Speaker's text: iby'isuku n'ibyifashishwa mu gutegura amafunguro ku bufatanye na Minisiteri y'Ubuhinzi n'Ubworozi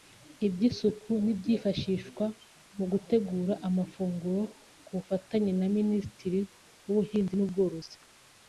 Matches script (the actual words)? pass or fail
pass